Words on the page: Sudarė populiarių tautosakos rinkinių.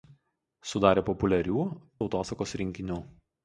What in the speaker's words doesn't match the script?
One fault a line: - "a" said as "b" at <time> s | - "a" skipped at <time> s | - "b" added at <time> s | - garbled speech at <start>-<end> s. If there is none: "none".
none